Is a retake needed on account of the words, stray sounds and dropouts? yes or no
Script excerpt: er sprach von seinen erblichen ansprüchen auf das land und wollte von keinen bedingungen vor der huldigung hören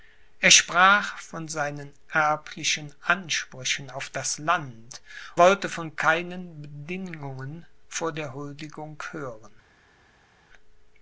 yes